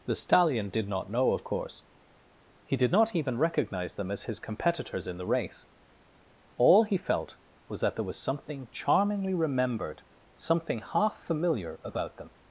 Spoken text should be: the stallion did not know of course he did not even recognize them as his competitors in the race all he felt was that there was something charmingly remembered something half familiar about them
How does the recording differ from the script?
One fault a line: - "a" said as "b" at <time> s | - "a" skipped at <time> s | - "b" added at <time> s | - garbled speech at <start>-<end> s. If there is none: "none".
none